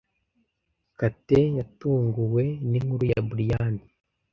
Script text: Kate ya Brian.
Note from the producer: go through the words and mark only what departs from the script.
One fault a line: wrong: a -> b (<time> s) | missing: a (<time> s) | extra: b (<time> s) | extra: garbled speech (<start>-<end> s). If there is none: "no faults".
extra: yatunguwe ninkuru (1.6 s)